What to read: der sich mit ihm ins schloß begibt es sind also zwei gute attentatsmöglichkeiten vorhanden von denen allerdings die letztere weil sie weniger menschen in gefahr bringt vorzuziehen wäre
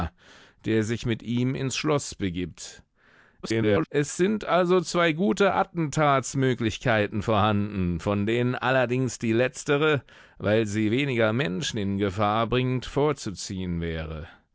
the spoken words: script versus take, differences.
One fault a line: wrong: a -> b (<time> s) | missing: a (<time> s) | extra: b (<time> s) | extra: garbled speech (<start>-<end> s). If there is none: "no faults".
extra: garbled speech (3.4-3.9 s)